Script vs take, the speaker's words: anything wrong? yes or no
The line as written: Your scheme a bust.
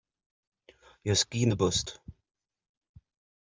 no